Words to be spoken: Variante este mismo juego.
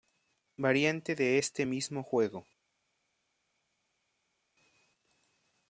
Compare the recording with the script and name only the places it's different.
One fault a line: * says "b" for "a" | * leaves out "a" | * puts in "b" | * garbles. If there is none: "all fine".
* puts in "de"